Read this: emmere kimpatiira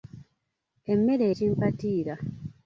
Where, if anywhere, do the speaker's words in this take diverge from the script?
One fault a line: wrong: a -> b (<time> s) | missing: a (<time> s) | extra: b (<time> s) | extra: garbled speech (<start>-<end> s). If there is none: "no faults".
no faults